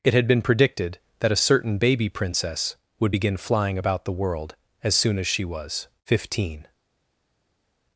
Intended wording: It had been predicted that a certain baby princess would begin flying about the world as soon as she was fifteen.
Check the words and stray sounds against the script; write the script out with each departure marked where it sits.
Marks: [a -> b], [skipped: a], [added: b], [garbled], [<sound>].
It had been predicted that a certain baby princess would begin flying about the world as soon as she was fifteen.